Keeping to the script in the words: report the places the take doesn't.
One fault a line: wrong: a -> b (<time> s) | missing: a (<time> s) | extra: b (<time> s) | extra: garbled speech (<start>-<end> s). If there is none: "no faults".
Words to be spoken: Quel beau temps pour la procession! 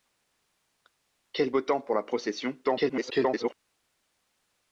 extra: garbled speech (2.6-3.5 s)